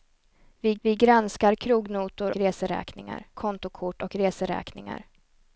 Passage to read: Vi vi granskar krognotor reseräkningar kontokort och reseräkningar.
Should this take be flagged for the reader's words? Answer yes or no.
no